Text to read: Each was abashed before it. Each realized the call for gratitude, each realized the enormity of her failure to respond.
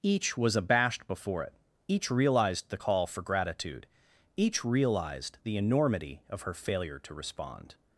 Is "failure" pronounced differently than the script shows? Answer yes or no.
no